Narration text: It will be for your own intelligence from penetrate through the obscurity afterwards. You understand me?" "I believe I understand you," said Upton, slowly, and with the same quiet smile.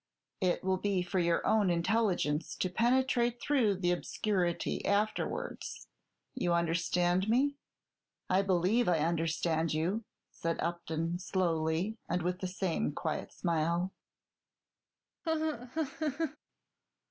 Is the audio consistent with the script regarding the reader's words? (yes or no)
no